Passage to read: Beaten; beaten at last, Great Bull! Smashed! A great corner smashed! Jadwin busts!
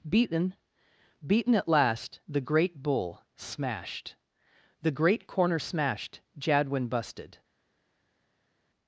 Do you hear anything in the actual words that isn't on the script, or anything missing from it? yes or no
yes